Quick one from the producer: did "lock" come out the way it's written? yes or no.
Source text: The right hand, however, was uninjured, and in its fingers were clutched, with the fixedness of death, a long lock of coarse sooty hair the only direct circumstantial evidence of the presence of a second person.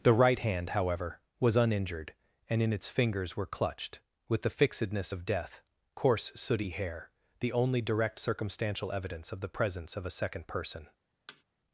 no